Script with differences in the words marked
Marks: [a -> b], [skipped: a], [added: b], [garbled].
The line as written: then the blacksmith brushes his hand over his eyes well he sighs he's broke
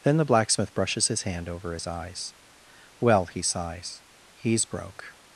then the blacksmith brushes his hand over his eyes well he sighs he's broke